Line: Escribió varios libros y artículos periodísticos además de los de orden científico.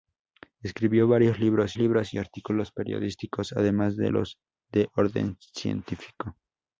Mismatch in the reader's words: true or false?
true